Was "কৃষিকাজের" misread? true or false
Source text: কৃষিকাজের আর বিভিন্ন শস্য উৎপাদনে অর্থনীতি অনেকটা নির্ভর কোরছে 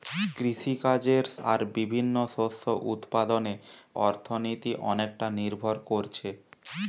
false